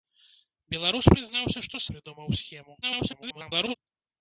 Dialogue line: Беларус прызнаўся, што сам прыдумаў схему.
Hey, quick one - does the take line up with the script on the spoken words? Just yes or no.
no